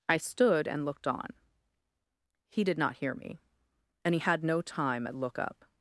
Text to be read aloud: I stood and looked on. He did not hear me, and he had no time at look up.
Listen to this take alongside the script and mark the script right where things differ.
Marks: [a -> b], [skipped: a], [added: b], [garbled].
I stood and looked on. He did not hear me, and he had no time at look up.